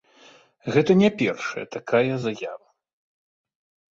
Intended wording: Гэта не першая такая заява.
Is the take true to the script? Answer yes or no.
yes